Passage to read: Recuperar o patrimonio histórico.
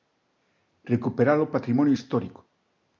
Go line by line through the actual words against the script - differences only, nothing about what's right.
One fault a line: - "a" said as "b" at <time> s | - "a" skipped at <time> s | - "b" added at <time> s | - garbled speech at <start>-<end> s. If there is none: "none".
none